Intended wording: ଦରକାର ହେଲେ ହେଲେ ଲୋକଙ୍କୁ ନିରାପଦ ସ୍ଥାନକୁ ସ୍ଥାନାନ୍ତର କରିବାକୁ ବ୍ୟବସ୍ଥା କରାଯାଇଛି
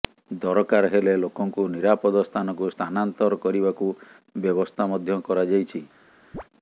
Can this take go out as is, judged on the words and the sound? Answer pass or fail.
fail